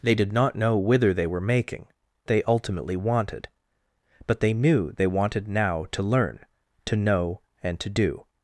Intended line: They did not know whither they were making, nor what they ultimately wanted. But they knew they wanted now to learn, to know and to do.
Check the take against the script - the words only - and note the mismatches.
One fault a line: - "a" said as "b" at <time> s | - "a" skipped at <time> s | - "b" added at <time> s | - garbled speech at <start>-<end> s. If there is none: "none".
- "nor what" skipped at 1.9 s